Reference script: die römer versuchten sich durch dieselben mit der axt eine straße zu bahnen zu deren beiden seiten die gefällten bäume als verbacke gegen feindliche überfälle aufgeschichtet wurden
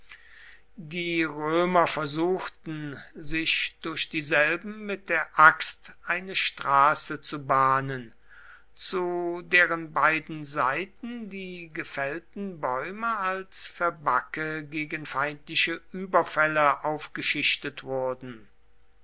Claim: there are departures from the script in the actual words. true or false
false